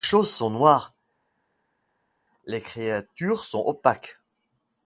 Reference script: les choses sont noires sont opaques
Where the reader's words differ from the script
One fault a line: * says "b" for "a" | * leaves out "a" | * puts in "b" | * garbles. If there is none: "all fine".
* puts in "les créatures"